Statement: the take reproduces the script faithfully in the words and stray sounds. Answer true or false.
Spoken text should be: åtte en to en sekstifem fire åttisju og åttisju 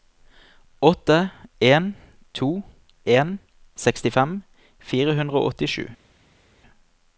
false